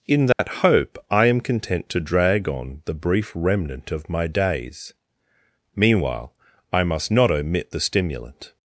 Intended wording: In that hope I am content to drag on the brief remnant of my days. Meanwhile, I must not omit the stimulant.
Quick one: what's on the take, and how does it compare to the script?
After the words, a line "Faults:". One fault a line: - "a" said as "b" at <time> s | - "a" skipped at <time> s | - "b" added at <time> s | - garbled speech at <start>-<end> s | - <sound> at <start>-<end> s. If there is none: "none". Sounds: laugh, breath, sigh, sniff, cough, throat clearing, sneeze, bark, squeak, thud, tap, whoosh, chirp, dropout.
In that hope I am content to drag on the brief remnant of my days. Meanwhile, I must not omit the stimulant.
Faults:
- dropout at 0.3-0.4 s